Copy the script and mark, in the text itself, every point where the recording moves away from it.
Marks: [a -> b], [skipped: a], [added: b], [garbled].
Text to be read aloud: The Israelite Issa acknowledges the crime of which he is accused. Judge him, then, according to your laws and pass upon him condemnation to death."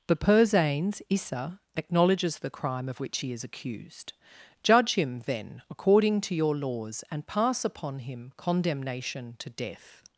The [Israelite -> Persanes] Issa acknowledges the crime of which he is accused. Judge him, then, according to your laws and pass upon him condemnation to death."